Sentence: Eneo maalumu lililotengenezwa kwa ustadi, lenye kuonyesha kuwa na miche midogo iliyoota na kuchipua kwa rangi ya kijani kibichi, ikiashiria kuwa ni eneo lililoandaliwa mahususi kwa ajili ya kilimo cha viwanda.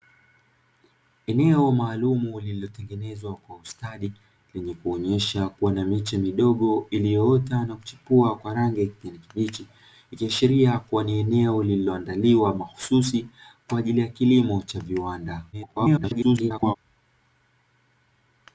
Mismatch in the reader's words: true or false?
true